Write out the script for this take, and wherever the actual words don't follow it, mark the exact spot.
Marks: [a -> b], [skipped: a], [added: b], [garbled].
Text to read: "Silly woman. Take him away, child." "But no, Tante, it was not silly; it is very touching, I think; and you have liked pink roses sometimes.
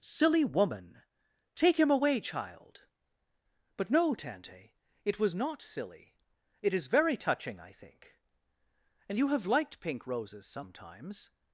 "Silly woman. Take him away, child." "But no, Tante, it was not silly; it is very touching, I think; and you have liked pink roses sometimes.